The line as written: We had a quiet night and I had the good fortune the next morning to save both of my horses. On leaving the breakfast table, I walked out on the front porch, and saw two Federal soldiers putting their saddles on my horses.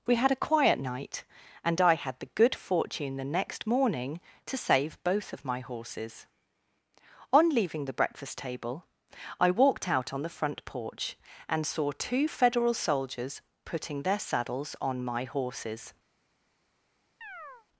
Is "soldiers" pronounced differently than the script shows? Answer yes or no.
no